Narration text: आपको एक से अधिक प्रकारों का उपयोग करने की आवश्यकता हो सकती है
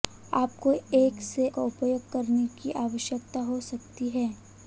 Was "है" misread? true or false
false